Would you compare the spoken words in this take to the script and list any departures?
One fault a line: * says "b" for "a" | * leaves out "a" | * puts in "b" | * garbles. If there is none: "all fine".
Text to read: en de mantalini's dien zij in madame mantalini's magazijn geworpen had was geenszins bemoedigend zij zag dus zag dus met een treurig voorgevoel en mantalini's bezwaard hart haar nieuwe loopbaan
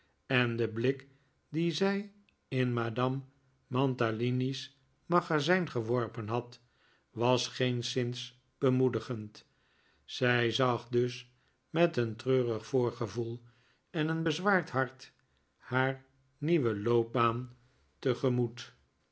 * says "blik" for "mantalini's"
* leaves out "zag dus"
* says "een" for "mantalini's"